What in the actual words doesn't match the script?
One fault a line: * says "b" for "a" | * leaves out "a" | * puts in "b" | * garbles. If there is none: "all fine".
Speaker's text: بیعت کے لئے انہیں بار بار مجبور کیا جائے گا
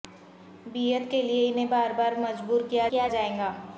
* puts in "کیا"